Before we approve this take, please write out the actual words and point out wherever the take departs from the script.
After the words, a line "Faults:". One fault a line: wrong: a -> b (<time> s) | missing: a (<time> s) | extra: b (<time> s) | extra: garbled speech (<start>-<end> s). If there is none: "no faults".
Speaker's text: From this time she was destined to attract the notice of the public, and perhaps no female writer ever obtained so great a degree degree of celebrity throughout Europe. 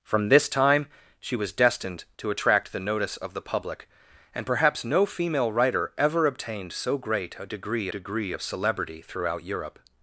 From this time she was destined to attract the notice of the public, and perhaps no female writer ever obtained so great a degree degree of celebrity throughout Europe.
Faults:
no faults